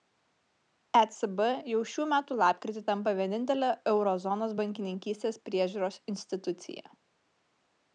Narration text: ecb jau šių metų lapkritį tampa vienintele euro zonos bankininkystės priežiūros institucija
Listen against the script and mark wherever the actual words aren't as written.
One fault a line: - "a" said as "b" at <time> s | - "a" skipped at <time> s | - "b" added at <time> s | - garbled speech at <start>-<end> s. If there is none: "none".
none